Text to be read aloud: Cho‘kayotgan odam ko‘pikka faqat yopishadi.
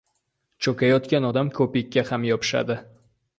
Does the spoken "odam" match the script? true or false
true